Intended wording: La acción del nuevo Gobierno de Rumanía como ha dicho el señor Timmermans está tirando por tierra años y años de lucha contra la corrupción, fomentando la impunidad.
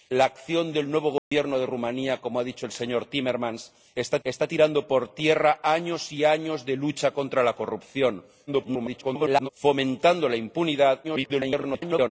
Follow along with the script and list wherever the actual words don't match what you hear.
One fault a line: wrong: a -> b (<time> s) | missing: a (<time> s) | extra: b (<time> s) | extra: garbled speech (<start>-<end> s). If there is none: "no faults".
extra: está (4.2 s)
extra: garbled speech (8.5-9.5 s)
extra: garbled speech (11.0-12.1 s)